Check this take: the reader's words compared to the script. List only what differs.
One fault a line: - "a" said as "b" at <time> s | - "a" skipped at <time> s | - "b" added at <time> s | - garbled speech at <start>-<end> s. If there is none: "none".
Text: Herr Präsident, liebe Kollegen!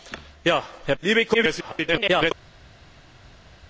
- "Präsident" skipped at 0.9 s
- garbled speech at 1.3-2.3 s